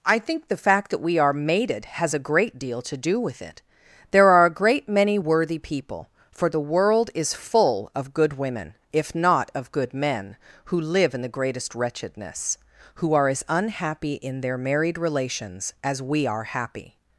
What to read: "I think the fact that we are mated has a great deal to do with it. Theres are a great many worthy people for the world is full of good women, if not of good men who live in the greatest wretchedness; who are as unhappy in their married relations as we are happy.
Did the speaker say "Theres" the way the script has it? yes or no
no